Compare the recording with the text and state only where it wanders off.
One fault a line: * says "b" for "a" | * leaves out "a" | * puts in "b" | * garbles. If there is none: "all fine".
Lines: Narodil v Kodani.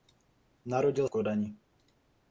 all fine